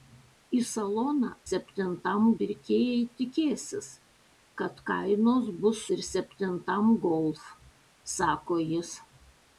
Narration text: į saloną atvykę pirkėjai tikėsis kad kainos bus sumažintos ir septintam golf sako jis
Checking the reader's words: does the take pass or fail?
fail